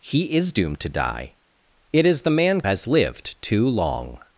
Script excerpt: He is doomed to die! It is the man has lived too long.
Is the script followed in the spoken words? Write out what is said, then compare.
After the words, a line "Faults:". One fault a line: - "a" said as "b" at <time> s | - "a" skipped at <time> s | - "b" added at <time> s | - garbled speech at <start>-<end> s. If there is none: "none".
He is doomed to die! It is the man has lived too long.
Faults:
none